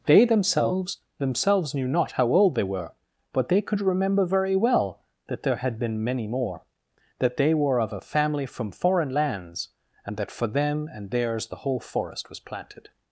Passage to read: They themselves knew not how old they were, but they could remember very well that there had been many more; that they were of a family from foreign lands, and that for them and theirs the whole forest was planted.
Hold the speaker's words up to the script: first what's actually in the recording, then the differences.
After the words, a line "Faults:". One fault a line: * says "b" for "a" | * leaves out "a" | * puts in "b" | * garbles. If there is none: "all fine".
They themselves themselves knew not how old they were, but they could remember very well that there had been many more; that they were of a family from foreign lands, and that for them and theirs the whole forest was planted.
Faults:
* puts in "themselves"